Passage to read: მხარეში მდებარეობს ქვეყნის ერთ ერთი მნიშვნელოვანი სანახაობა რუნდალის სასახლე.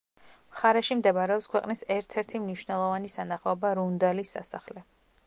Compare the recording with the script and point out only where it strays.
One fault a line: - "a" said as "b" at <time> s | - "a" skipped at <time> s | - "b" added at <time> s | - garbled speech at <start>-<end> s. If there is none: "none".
none